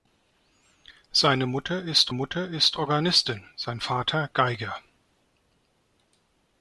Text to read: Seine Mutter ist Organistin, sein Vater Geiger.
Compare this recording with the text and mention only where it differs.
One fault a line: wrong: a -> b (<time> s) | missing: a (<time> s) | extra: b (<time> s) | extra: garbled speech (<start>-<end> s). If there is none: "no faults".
extra: Mutter ist (2.1 s)